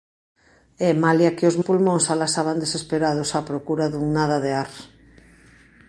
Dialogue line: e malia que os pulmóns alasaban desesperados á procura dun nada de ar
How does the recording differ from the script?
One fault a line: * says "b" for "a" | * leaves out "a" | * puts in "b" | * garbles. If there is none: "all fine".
all fine